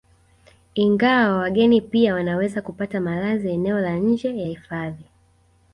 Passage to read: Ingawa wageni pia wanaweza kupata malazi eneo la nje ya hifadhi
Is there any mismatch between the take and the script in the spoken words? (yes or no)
no